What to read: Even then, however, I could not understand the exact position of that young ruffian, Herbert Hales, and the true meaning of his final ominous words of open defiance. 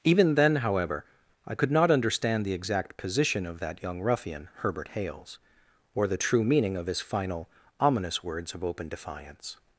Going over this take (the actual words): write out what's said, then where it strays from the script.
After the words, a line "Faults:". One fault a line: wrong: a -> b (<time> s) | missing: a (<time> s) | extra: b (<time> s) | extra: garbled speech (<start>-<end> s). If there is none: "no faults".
Even then, however, I could not understand the exact position of that young ruffian, Herbert Hales, or the true meaning of his final ominous words of open defiance.
Faults:
wrong: and -> or (5.9 s)